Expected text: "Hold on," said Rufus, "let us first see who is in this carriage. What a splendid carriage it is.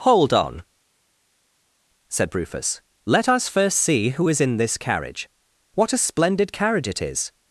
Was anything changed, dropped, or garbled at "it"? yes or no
no